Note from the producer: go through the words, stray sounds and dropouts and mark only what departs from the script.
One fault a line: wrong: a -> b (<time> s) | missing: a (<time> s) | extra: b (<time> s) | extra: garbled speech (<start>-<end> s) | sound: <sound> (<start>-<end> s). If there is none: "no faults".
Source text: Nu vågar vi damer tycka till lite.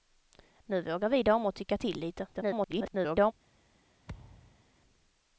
extra: garbled speech (2.3-3.3 s)
sound: thud (4.1-4.6 s)